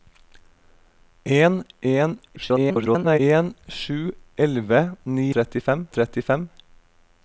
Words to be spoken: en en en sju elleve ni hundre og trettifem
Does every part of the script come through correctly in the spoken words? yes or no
no